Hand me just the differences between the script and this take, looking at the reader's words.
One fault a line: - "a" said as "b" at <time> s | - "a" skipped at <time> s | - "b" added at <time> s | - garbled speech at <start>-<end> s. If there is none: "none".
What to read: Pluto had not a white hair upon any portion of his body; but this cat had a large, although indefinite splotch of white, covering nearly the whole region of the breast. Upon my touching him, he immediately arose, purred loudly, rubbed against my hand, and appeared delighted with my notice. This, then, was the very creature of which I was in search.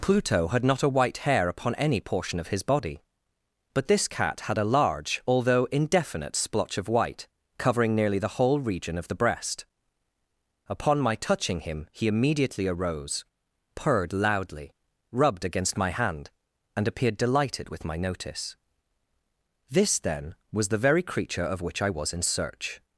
none